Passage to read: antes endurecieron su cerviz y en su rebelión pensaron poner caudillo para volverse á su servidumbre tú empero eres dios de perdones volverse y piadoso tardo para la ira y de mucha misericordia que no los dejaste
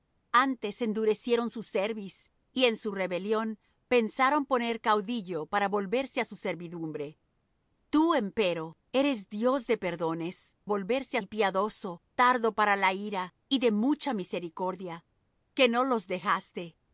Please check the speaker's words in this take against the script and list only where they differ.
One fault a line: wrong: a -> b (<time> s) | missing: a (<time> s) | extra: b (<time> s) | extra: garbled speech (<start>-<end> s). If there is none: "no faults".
no faults